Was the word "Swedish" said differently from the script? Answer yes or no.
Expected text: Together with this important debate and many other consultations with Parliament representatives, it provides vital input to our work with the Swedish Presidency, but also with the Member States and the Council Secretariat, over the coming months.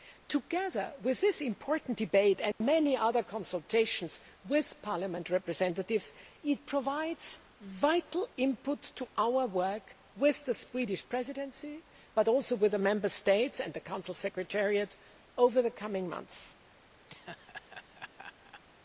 no